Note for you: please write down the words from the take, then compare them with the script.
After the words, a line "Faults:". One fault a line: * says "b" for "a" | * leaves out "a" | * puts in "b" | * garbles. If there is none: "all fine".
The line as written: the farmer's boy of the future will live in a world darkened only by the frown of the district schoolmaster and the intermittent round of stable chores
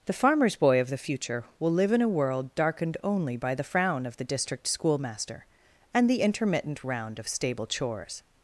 the farmer's boy of the future will live in a world darkened only by the frown of the district schoolmaster and the intermittent round of stable chores
Faults:
all fine